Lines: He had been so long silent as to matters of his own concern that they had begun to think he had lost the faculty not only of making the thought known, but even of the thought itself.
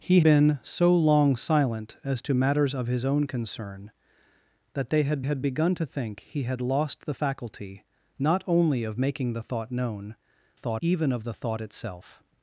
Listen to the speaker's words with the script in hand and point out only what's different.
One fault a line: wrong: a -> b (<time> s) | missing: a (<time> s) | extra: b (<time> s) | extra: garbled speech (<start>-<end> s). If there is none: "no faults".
missing: had (0.2 s)
extra: had (5.2 s)
wrong: but -> thought (10.5 s)